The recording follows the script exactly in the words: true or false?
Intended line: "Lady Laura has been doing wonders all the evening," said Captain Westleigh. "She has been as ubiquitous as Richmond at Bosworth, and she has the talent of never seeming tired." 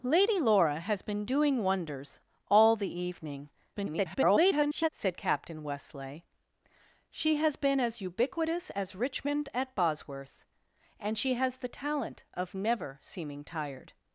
false